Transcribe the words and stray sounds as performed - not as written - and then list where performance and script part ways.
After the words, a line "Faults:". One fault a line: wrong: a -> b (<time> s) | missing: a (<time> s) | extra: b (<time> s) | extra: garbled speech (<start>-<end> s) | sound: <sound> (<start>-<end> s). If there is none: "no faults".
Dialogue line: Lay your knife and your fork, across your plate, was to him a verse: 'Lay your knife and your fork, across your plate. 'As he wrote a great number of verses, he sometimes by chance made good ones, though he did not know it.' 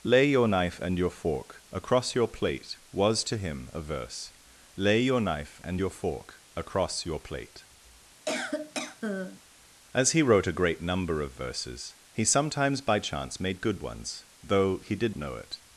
Lay your knife and your fork, across your plate, was to him a verse: 'Lay your knife and your fork, across your plate. 'As he wrote a great number of verses, he sometimes by chance made good ones, though he did know it.'
Faults:
sound: cough (8.3-9.4 s)
missing: not (15.1 s)